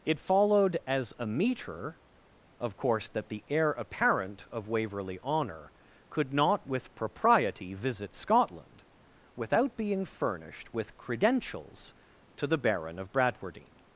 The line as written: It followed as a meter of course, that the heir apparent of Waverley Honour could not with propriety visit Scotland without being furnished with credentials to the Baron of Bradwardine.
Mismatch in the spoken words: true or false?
false